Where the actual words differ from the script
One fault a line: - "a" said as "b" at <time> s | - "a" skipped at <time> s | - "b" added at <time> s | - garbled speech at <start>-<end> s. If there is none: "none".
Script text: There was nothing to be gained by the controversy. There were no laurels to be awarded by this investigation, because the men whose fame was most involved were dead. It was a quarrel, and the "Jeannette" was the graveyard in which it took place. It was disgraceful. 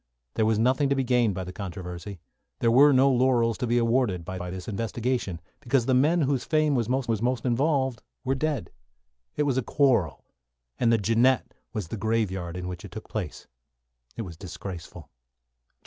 - "by" added at 4.4 s
- "was most" added at 7.1 s